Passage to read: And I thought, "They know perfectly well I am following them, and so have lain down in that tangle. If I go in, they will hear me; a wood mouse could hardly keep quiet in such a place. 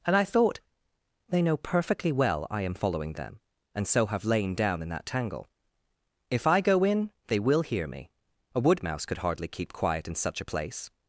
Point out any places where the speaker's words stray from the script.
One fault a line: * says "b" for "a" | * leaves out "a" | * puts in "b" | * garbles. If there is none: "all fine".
all fine